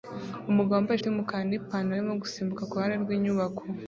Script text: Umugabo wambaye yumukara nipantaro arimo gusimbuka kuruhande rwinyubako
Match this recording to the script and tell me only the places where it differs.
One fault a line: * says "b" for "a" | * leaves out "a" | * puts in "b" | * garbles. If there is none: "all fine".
all fine